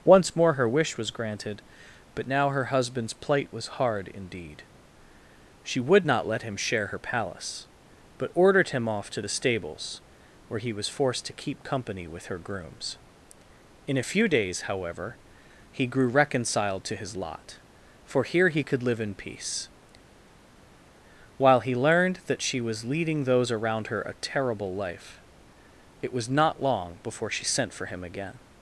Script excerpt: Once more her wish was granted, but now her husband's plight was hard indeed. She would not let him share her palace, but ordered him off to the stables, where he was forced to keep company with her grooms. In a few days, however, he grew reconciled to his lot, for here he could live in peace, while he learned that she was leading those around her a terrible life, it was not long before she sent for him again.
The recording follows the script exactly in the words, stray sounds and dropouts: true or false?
true